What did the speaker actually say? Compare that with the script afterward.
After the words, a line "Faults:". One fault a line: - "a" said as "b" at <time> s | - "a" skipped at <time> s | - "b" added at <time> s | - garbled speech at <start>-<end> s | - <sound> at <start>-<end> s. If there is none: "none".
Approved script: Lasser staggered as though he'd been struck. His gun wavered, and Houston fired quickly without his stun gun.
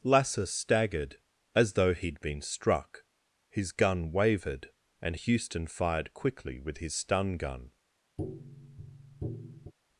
Lasser staggered as though he'd been struck. His gun wavered, and Houston fired quickly with his stun gun.
Faults:
- "without" said as "with" at 6.6 s
- tap at 8.2-9.7 s